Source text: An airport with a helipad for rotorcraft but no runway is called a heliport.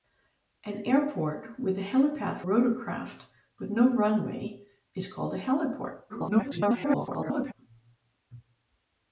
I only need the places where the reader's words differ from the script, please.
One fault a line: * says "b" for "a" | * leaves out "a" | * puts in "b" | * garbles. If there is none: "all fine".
* leaves out "for"
* garbles